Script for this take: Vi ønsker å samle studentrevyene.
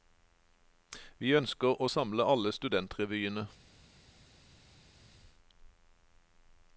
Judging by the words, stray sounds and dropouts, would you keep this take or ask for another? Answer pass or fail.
fail